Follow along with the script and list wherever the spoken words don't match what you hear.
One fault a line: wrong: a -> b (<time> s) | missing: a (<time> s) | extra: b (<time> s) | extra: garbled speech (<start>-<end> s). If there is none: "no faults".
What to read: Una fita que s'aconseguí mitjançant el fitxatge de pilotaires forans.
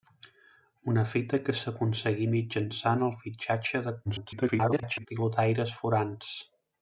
extra: garbled speech (4.1-5.1 s)